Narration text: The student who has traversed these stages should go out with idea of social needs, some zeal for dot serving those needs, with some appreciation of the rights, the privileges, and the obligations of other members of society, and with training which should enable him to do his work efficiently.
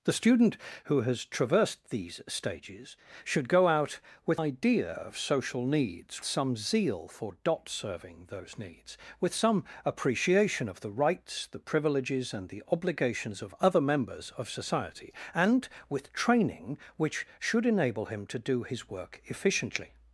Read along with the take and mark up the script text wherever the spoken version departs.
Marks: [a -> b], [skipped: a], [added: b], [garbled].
The student who has traversed these stages should go out with idea of social needs, some zeal for dot serving those needs, with some appreciation of the rights, the privileges, and the obligations of other members of society, and with training which should enable him to do his work efficiently.